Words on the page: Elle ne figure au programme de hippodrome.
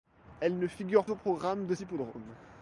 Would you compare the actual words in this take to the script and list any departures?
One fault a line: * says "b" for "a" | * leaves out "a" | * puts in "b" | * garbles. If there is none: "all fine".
all fine